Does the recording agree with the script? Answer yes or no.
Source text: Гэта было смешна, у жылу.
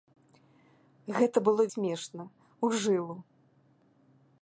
yes